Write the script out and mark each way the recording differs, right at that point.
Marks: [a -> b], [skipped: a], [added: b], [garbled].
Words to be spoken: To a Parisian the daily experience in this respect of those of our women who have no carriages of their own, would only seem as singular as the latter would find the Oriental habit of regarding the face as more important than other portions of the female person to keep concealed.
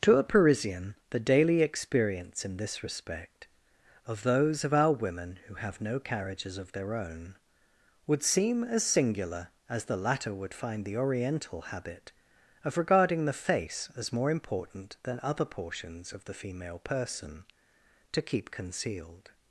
To a Parisian the daily experience in this respect of those of our women who have no carriages of their own, would [skipped: only] seem as singular as the latter would find the Oriental habit of regarding the face as more important than other portions of the female person to keep concealed.